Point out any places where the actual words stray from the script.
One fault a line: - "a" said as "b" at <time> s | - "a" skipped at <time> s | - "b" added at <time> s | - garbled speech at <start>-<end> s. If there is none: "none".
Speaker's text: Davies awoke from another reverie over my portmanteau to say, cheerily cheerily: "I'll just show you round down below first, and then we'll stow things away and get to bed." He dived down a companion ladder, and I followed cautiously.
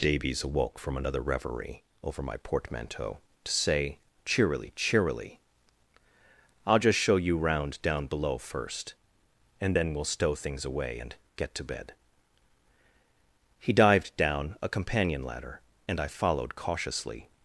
none